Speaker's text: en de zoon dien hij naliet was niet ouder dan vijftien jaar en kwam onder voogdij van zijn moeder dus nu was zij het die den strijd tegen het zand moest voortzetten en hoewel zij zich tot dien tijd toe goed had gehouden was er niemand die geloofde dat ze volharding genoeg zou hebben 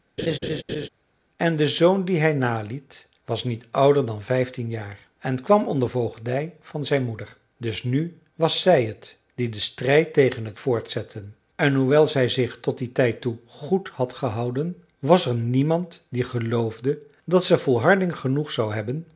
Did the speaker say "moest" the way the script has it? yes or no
no